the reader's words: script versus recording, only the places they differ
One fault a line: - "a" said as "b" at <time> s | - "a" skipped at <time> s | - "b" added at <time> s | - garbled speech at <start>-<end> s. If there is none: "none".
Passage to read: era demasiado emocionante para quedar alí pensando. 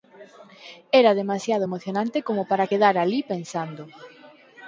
- "como" added at 2.3 s